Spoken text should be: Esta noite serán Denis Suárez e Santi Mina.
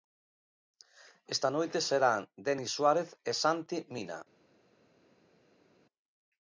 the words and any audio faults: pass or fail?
pass